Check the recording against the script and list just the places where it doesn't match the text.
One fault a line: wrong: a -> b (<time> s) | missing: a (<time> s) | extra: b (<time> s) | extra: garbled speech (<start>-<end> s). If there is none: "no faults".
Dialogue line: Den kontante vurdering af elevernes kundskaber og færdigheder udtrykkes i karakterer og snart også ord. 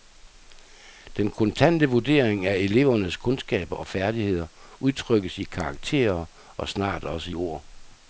no faults